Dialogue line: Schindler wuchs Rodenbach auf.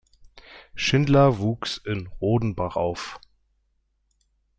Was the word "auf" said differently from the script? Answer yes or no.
no